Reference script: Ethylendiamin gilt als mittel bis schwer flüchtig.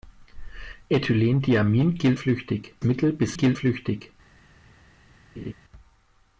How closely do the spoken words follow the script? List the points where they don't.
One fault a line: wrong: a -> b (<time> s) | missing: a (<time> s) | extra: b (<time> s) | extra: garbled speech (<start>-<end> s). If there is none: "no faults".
wrong: als -> flüchtig (2.1 s)
wrong: schwer -> gilt (3.3 s)